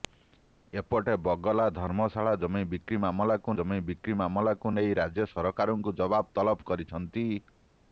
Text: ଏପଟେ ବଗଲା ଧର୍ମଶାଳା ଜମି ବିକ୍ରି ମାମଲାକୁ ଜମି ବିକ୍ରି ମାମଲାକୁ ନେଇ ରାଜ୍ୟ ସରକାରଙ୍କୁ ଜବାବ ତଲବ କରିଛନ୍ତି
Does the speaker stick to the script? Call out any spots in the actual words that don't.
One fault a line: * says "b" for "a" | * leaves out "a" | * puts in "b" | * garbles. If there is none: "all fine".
all fine